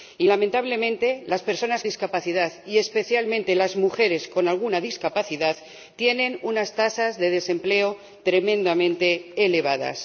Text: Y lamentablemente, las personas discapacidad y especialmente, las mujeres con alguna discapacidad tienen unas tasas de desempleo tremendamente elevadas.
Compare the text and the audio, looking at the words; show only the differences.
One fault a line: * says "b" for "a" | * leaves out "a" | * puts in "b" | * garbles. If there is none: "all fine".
all fine